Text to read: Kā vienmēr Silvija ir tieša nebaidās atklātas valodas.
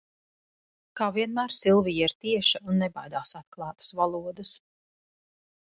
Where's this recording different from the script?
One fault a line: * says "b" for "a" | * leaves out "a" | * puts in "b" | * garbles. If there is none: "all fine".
* puts in "un"